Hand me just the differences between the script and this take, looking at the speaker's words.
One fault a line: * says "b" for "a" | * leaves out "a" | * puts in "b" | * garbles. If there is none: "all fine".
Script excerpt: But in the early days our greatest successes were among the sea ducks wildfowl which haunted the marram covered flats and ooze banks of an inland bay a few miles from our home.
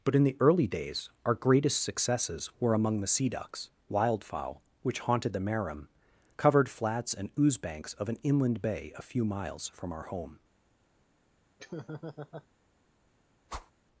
all fine